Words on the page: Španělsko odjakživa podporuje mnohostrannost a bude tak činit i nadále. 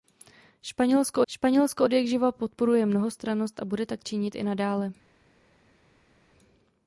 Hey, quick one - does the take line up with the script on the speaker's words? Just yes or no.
no